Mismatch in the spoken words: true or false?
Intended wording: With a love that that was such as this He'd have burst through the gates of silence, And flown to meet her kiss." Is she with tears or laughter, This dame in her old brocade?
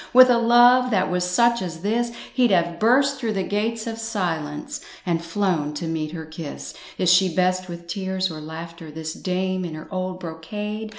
true